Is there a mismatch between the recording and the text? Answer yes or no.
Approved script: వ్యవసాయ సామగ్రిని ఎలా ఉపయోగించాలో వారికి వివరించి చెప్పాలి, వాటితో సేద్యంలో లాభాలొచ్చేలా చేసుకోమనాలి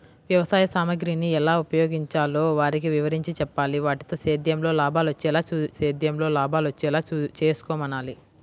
yes